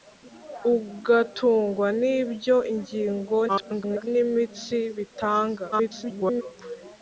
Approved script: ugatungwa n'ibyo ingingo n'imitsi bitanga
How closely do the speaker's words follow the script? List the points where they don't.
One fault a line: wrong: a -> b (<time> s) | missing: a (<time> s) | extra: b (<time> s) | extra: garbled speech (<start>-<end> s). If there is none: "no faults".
extra: garbled speech (3.5-4.1 s)
extra: garbled speech (5.7-6.4 s)